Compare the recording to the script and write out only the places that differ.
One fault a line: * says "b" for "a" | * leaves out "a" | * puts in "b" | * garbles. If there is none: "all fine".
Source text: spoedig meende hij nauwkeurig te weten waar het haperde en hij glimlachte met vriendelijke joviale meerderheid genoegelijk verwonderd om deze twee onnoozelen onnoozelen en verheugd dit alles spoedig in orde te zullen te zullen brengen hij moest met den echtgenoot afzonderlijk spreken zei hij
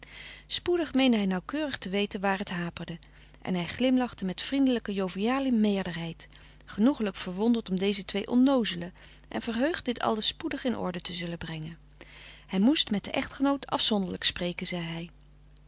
* leaves out "onnoozelen"
* leaves out "te zullen"